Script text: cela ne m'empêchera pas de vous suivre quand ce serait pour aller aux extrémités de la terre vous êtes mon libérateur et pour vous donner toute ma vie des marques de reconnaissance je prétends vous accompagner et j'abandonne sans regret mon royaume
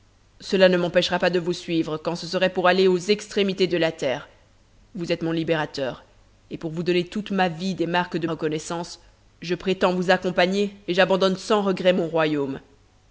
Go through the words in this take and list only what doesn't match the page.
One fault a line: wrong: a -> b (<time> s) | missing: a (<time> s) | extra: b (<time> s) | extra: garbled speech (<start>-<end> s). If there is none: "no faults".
no faults